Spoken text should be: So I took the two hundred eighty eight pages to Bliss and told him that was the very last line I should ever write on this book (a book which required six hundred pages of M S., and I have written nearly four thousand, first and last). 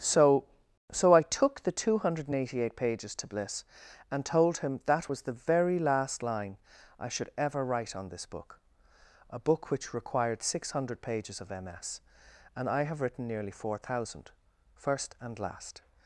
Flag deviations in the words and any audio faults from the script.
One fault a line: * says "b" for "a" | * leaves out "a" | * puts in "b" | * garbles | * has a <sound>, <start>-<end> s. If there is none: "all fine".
* puts in "so"